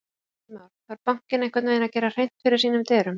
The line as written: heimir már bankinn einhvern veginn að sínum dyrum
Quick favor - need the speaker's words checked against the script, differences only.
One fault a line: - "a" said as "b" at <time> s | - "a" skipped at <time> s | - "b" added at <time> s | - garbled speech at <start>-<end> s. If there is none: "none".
- "þarf" added at 0.9 s
- "gera hreint fyrir" added at 2.0 s